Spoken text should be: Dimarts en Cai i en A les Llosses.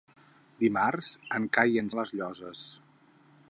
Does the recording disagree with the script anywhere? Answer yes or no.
no